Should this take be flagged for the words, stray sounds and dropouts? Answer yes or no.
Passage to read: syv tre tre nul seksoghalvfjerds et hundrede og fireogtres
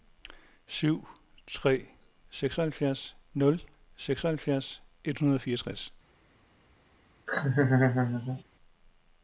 yes